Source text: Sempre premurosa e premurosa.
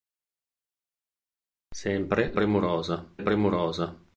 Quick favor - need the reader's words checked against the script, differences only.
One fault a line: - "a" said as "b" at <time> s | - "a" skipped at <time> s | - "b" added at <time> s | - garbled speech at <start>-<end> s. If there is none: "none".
none